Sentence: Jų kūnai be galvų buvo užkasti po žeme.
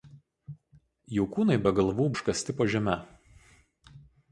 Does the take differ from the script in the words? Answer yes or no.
yes